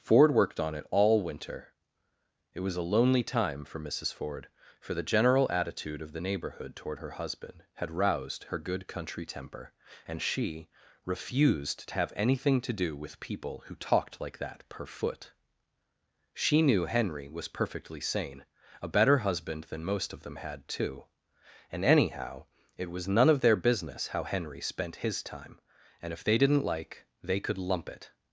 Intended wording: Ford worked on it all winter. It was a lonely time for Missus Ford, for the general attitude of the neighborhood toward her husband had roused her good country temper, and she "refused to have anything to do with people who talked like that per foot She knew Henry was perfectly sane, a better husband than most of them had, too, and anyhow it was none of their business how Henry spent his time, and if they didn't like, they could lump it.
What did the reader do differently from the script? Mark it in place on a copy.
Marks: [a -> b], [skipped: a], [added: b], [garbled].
Ford worked on it all winter. It was a lonely time for Missus Ford, for the general attitude of the neighborhood toward her husband had roused her good country temper, and she "refused to have anything to do with people who talked like that per foot She knew Henry was perfectly sane, a better husband than most of them had, too, and anyhow it was none of their business how Henry spent his time, and if they didn't like, they could lump it.